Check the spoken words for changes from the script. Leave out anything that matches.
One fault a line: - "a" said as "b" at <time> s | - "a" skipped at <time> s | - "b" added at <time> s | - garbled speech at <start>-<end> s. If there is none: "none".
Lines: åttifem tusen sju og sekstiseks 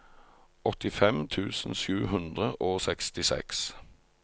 - "hundre" added at 2.1 s